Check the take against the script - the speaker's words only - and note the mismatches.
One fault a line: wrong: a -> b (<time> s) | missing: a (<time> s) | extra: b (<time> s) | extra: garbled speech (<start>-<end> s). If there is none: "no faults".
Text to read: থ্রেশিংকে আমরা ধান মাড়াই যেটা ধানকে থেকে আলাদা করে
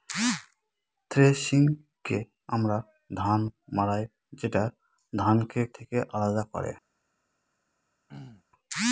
no faults